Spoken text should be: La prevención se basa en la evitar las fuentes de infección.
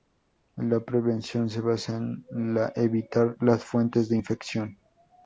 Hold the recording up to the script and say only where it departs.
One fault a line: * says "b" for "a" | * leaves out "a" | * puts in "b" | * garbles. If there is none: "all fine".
all fine